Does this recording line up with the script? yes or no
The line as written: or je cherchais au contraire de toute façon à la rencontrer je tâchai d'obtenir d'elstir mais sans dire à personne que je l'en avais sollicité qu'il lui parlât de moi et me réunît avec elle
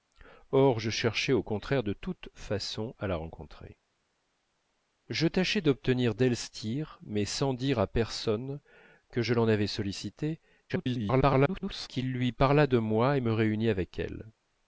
no